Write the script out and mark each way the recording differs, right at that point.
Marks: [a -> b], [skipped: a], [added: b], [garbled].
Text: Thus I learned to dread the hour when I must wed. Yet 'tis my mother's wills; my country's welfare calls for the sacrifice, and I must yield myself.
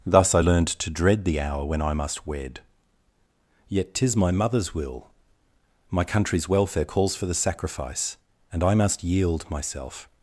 Thus I learned to dread the hour when I must wed. Yet 'tis my mother's [wills; -> will] my country's welfare calls for the sacrifice, and I must yield myself.